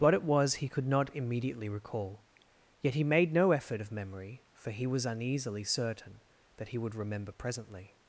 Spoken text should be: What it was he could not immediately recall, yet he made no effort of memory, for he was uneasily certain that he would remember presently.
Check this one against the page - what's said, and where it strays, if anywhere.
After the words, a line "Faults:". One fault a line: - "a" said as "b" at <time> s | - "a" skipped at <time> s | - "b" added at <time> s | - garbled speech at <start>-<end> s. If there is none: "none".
What it was he could not immediately recall, yet he made no effort of memory, for he was uneasily certain that he would remember presently.
Faults:
none